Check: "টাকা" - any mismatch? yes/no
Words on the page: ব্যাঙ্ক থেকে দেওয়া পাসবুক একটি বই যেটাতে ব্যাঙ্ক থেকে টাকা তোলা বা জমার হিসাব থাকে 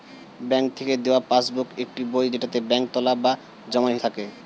yes